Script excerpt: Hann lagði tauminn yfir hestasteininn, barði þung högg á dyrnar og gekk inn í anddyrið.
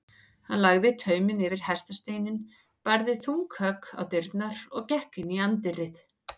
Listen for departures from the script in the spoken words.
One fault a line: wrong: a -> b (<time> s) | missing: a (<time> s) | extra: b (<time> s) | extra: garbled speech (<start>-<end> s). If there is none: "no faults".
no faults